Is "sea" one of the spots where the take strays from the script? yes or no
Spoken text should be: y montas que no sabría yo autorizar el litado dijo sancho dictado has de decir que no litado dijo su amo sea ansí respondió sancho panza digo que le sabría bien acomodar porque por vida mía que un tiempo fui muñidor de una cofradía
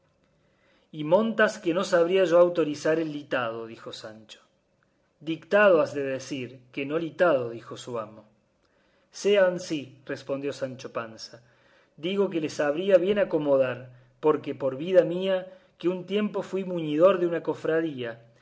no